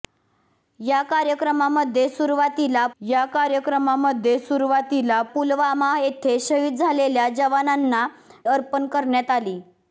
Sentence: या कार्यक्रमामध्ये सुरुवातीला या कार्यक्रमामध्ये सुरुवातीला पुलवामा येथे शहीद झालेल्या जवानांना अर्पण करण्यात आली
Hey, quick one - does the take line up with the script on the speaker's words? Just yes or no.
yes